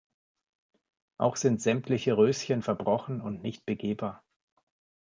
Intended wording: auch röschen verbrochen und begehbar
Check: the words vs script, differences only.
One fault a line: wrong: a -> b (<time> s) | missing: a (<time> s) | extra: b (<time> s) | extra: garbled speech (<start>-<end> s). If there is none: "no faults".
extra: sind sämtliche (1.3 s)
extra: nicht (3.4 s)